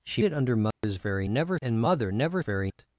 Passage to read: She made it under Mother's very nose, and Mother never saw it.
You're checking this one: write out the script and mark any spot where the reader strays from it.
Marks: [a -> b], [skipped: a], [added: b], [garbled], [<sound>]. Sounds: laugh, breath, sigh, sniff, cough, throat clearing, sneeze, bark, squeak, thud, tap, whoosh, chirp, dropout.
She [skipped: made] it under Mother's [dropout] very [nose, -> never] and Mother never [saw -> very] it.